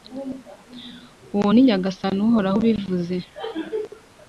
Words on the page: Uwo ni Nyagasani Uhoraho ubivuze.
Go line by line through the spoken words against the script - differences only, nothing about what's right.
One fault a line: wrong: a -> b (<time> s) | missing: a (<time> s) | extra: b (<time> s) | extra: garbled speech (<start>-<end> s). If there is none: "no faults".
no faults